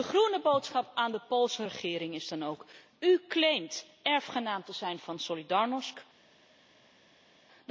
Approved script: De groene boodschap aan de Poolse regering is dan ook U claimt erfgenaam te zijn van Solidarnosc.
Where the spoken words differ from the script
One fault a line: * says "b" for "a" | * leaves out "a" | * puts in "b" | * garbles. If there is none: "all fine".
all fine